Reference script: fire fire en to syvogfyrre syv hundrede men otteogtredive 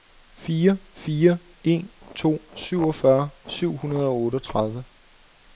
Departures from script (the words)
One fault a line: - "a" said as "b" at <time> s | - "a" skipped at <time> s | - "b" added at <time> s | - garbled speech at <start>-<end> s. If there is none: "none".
- "men" said as "og" at 4.1 s